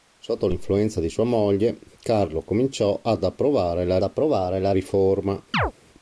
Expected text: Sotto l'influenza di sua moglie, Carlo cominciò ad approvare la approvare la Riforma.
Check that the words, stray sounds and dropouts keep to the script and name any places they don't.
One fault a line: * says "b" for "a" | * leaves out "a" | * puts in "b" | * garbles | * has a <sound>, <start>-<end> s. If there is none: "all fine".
* has a chirp, 5.5-5.7 s